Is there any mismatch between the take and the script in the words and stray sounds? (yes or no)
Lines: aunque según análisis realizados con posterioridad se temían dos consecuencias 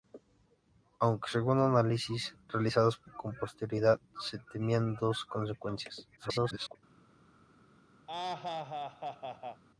yes